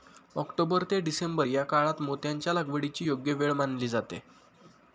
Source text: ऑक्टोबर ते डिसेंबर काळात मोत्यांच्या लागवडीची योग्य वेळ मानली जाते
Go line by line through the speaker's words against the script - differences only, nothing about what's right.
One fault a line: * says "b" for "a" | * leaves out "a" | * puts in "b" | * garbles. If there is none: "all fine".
* puts in "या"